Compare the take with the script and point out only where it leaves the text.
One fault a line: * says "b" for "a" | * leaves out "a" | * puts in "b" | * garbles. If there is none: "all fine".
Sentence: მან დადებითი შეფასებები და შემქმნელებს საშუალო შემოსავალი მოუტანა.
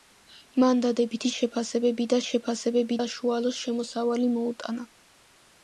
* says "შეფასებები" for "შემქმნელებს"